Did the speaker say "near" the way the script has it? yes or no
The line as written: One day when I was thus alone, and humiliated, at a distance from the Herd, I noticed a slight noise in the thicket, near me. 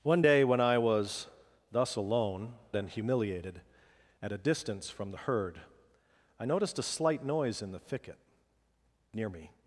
yes